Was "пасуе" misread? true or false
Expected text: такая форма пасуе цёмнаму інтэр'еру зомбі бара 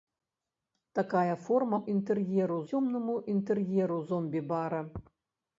true